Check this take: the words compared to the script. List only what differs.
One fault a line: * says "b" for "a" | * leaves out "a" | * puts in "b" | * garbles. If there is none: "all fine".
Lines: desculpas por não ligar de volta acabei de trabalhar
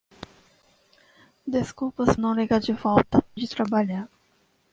* leaves out "por"
* leaves out "acabei"